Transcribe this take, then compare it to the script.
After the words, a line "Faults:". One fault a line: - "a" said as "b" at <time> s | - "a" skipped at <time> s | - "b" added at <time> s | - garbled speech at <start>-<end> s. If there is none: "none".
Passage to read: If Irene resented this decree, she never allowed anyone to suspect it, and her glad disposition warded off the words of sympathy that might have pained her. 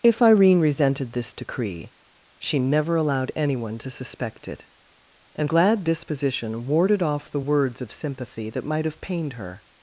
If Irene resented this decree, she never allowed anyone to suspect it, and glad disposition warded off the words of sympathy that might have pained her.
Faults:
- "her" skipped at 5.5 s